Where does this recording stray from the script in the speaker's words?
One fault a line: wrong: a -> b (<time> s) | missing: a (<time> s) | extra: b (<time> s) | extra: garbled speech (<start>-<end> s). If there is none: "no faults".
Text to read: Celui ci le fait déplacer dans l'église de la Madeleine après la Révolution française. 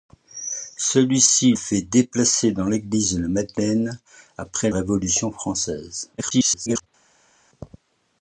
missing: le (1.5 s)
missing: la (4.7 s)
extra: garbled speech (6.2-6.9 s)